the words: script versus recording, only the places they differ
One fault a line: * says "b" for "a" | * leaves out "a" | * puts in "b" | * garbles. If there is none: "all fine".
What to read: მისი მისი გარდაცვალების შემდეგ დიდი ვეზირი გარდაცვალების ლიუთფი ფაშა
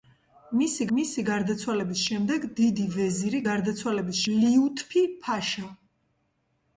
all fine